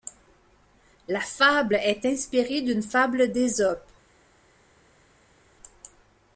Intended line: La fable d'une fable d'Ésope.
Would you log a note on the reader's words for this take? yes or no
yes